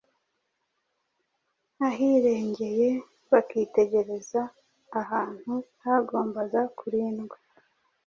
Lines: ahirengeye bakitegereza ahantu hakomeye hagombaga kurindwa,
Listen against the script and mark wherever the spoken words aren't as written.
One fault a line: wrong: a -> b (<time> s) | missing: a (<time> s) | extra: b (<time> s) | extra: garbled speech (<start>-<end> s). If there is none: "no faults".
missing: hakomeye (5.5 s)